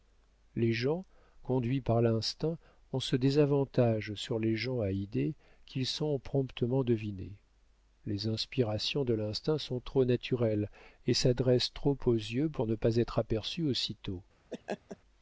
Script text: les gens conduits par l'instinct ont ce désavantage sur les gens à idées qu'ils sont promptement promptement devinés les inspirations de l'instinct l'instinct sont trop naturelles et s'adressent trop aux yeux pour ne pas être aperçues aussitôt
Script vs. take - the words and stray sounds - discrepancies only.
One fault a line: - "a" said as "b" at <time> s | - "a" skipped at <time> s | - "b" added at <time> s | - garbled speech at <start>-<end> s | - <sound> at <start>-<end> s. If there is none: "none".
- "promptement" skipped at 6.8 s
- "l'instinct" skipped at 9.6 s
- laugh at 14.5-15.0 s